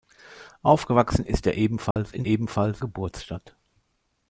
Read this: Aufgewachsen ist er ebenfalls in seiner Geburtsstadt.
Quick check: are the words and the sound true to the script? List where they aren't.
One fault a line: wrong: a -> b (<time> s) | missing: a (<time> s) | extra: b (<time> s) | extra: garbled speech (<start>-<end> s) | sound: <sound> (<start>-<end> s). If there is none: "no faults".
sound: dropout (1.9-2.0 s)
wrong: seiner -> ebenfalls (2.2 s)